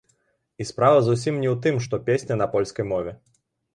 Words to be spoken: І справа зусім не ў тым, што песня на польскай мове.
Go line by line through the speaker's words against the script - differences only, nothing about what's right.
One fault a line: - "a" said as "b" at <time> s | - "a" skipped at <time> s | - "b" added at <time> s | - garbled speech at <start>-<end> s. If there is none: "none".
none